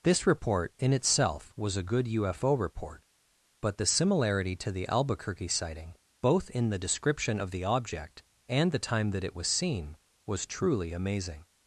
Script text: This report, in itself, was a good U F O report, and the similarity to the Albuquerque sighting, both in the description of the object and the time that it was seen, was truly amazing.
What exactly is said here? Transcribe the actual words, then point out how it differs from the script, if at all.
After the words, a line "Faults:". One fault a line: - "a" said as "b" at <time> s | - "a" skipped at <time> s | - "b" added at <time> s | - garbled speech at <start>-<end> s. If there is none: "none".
This report, in itself, was a good U F O report, but the similarity to the Albuquerque sighting, both in the description of the object and the time that it was seen, was truly amazing.
Faults:
- "and" said as "but" at 3.6 s